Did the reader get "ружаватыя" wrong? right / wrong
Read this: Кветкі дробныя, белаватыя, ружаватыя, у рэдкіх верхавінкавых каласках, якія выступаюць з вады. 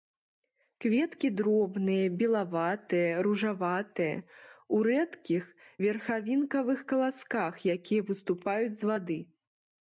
right